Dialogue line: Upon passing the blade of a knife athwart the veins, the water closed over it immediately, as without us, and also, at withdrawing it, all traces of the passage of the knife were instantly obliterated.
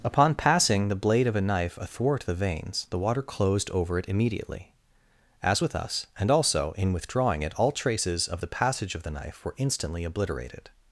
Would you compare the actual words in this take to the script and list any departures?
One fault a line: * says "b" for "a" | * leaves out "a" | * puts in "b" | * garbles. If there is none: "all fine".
* says "with" for "without"
* says "in" for "at"